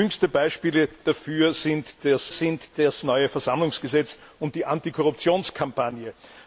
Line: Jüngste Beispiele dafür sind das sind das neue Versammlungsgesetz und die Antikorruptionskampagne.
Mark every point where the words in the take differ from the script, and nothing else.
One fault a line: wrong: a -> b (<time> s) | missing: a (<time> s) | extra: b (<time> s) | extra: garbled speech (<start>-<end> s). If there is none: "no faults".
no faults